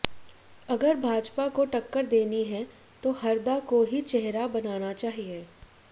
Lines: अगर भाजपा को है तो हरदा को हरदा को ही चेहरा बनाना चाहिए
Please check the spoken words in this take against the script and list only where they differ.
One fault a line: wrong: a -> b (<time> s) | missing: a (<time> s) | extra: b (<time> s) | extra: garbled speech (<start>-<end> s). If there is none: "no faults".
extra: टक्कर देनी (1.6 s)
missing: हरदा को (3.8 s)